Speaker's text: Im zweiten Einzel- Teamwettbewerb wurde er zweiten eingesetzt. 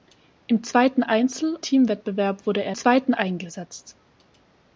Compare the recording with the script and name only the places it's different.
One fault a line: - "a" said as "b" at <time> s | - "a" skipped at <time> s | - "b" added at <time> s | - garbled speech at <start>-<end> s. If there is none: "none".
none